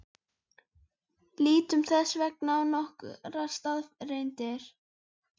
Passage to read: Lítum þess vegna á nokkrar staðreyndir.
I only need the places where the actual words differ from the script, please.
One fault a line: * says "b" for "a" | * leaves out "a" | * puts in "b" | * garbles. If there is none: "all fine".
all fine